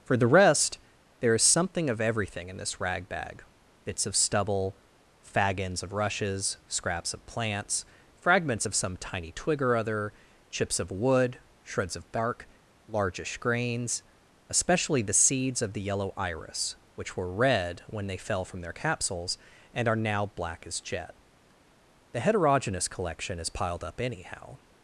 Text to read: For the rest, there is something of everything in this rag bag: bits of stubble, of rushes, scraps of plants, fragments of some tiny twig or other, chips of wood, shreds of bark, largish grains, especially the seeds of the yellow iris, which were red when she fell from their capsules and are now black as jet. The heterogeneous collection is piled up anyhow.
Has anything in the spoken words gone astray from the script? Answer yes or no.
yes